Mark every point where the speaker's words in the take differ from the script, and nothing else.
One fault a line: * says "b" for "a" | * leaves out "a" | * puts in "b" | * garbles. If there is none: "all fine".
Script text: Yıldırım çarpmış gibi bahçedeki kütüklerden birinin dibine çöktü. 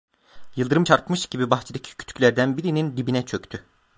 all fine